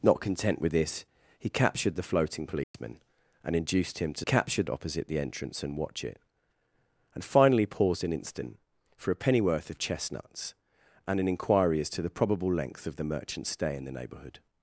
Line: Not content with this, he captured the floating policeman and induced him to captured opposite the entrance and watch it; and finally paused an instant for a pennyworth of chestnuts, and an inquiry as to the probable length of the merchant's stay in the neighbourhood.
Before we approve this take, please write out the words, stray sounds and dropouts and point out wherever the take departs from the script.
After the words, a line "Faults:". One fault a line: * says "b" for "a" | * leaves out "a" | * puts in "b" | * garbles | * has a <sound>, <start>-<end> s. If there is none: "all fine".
Not content with this, he captured the floating policeman and induced him to captured opposite the entrance and watch it; and finally paused an instant for a pennyworth of chestnuts, and an inquiry as to the probable length of the merchant's stay in the neighbourhood.
Faults:
* has a dropout, 2.6-2.7 s